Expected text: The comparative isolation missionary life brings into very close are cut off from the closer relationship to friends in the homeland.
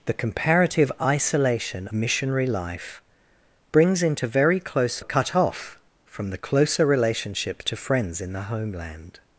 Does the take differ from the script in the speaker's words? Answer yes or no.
no